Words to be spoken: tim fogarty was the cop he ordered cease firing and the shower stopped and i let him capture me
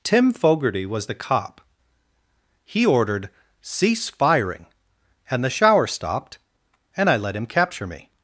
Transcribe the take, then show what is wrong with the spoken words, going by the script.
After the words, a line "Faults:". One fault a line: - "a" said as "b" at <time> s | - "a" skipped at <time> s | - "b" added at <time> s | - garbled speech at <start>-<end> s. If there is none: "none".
tim fogarty was the cop he ordered cease firing and the shower stopped and i let him capture me
Faults:
none